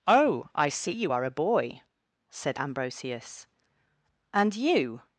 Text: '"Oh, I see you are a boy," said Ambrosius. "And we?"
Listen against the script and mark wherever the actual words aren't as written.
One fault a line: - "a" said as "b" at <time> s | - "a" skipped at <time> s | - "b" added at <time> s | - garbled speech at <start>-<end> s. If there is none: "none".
- "we" said as "you" at 4.6 s